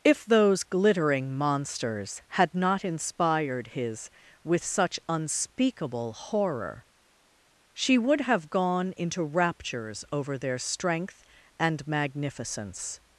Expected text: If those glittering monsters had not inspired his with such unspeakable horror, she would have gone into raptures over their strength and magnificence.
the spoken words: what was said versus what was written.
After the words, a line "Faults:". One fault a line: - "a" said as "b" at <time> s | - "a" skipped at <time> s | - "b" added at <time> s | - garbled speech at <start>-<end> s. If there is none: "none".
If those glittering monsters had not inspired his with such unspeakable horror, she would have gone into raptures over their strength and magnificence.
Faults:
none